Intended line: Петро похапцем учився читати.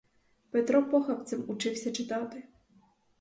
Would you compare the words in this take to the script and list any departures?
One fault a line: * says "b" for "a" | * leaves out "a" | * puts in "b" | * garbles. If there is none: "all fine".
all fine